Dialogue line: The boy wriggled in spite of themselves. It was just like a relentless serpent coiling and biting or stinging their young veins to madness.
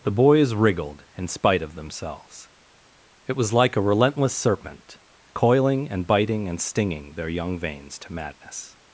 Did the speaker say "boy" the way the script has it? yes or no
no